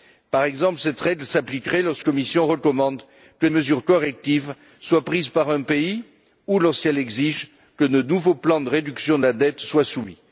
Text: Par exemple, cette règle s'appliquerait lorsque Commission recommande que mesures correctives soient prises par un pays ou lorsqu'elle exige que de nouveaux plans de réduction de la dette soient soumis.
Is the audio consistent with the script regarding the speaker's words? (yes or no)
yes